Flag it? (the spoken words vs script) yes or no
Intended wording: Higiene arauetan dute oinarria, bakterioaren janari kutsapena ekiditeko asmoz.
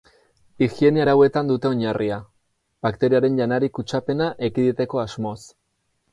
no